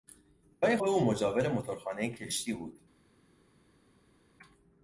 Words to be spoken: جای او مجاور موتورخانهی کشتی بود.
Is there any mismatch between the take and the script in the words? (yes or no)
no